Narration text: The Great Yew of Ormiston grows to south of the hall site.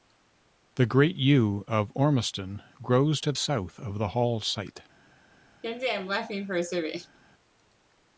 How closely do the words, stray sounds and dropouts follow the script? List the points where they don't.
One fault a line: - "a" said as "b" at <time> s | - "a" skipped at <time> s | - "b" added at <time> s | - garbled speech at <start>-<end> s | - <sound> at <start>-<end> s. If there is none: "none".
- laugh at 5.6-7.2 s